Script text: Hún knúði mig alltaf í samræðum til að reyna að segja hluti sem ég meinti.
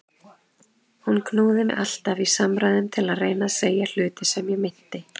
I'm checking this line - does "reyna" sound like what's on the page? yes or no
yes